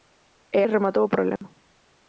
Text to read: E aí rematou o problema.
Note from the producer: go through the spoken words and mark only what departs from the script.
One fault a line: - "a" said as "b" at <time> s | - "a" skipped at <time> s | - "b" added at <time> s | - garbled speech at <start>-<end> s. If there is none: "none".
- "aí" skipped at 0.6 s